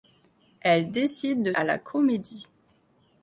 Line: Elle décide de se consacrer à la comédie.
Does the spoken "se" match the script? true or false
false